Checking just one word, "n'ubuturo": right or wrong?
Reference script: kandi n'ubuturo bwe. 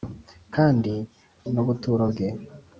right